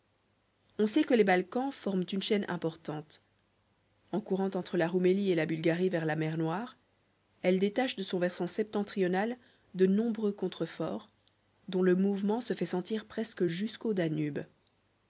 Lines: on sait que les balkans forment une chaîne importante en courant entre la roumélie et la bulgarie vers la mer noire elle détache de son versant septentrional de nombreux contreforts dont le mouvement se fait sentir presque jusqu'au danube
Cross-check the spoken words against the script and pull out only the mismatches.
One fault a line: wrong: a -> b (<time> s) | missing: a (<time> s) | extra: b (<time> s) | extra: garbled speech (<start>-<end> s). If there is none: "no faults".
no faults